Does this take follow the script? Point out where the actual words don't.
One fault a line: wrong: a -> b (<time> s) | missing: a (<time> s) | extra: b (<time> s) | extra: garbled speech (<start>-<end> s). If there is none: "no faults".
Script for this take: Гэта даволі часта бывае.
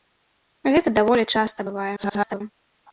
extra: garbled speech (2.0-2.4 s)